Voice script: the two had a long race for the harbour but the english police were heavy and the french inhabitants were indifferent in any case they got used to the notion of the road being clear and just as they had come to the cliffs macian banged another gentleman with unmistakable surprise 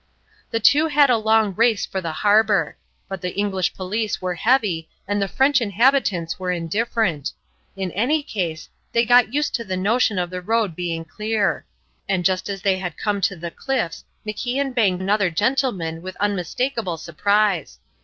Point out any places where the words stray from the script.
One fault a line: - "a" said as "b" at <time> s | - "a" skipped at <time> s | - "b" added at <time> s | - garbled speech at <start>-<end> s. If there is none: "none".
none